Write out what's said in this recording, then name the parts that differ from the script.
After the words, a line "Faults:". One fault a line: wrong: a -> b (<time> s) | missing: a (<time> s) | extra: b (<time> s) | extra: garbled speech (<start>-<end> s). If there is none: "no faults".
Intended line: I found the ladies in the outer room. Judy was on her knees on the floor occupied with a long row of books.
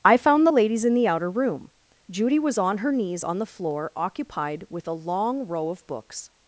I found the ladies in the outer room. Judy was on her knees on the floor occupied with a long row of books.
Faults:
no faults